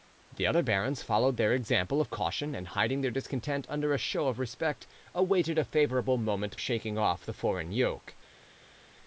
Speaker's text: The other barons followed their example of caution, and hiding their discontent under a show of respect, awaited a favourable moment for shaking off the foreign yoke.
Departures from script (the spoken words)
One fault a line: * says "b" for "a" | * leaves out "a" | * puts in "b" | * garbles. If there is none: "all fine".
* leaves out "for"